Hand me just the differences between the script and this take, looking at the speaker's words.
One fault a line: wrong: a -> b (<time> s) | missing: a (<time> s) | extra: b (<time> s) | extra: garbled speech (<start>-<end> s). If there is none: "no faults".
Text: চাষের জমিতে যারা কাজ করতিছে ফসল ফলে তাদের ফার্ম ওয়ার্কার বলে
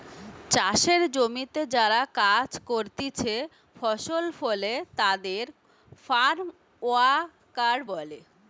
no faults